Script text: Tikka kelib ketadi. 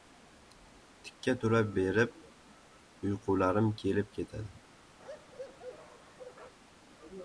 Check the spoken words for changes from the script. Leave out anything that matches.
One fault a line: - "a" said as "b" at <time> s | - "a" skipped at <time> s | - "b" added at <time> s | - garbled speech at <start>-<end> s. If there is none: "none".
- "tura berib uyqularim" added at 1.4 s